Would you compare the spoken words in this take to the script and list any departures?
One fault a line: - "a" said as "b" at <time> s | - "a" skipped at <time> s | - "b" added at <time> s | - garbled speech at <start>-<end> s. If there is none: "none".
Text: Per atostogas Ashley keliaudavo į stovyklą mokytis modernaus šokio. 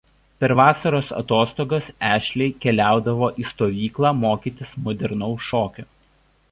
- "vasaros" added at 0.6 s